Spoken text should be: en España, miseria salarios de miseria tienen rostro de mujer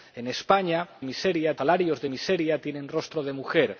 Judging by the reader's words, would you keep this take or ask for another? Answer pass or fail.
pass